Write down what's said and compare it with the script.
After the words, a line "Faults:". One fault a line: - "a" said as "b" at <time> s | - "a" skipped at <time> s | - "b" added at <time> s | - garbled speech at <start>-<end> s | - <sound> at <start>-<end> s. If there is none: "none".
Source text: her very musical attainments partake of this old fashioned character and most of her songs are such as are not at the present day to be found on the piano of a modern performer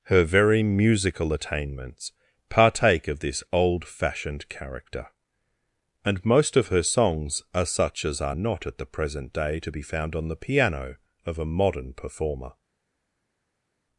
her very musical attainments partake of this old fashioned character and most of her songs are such as are not at the present day to be found on the piano of a modern performer
Faults:
none